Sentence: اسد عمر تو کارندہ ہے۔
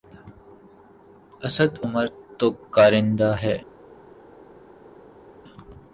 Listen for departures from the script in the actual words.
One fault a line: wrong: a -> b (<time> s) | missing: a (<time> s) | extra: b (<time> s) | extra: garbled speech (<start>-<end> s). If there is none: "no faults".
no faults